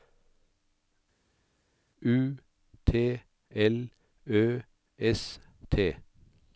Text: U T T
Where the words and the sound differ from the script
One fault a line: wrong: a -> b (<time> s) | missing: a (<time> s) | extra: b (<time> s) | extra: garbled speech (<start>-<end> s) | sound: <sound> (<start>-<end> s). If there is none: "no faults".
extra: L Ø S (3.5 s)